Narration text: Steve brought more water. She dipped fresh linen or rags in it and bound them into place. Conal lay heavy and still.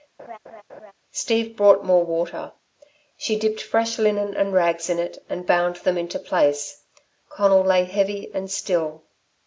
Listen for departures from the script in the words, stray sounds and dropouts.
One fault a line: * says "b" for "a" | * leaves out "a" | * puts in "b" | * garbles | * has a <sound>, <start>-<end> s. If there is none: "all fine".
* has a laugh, 0.2-0.9 s
* says "and" for "or"